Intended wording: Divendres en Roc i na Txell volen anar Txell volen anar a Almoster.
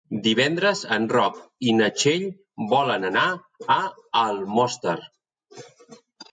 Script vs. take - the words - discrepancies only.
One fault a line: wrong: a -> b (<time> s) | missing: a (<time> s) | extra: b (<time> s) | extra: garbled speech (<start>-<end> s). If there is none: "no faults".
missing: Txell volen anar (3.3 s)